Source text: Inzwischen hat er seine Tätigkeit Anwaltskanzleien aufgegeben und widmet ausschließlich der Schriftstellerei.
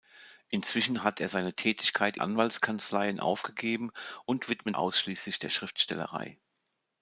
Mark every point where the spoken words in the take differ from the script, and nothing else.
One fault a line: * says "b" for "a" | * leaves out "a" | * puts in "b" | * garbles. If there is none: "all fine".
all fine